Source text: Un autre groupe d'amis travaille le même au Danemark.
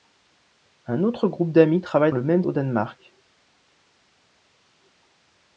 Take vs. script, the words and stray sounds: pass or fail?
pass